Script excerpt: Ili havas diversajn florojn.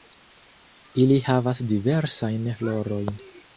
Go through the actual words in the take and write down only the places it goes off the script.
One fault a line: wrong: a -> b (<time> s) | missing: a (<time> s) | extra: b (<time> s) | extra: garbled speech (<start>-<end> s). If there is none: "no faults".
no faults